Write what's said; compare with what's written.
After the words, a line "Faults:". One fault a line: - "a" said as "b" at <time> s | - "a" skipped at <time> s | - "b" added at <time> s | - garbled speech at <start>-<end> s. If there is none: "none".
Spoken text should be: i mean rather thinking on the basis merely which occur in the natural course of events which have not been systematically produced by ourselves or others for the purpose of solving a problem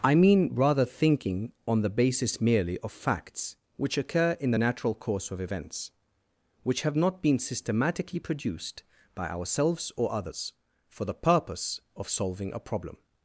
i mean rather thinking on the basis merely of facts which occur in the natural course of events which have not been systematically produced by ourselves or others for the purpose of solving a problem
Faults:
- "of facts" added at 2.8 s